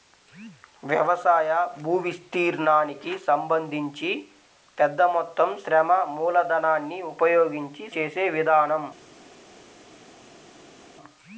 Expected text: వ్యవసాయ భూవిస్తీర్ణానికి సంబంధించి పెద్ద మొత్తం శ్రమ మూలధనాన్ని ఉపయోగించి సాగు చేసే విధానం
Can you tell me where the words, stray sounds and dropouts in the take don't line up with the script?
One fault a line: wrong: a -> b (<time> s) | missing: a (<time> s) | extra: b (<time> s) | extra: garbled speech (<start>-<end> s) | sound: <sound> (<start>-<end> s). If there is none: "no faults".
missing: సాగు (7.8 s)